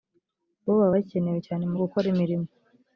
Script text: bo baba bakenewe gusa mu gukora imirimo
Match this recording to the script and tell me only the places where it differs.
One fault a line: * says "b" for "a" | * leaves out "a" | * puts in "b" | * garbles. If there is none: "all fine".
* says "cyane" for "gusa"